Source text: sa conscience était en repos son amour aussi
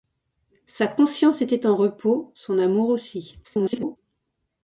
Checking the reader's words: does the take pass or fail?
fail